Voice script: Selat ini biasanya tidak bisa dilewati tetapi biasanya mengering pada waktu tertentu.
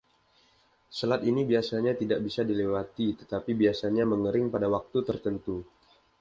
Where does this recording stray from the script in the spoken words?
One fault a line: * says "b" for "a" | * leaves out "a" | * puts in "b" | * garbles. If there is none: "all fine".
all fine